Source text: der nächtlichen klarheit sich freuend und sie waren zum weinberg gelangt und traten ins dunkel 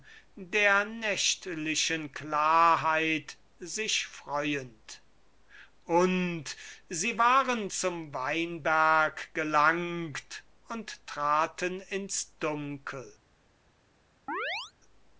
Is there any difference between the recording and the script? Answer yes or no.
no